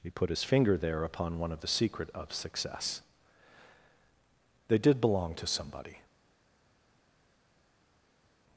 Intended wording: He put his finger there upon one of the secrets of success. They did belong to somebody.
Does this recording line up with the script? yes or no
no